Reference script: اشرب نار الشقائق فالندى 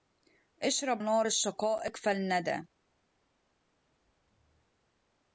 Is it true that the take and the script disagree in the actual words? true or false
false